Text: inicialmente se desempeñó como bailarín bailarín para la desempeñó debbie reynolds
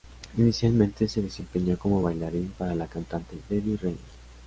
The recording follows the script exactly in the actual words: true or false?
false